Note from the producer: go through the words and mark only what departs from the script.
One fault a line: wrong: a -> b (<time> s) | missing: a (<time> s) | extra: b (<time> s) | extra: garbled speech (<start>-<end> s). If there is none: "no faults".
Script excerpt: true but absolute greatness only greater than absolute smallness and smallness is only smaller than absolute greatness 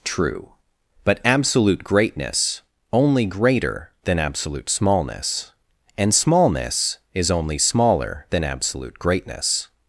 no faults